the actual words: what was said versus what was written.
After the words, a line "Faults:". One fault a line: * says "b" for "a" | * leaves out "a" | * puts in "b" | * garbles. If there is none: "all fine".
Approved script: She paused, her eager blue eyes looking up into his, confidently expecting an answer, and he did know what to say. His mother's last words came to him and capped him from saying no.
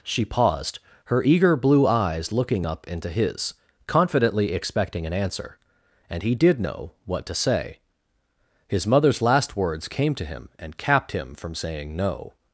She paused, her eager blue eyes looking up into his, confidently expecting an answer, and he did know what to say. His mother's last words came to him and capped him from saying no.
Faults:
all fine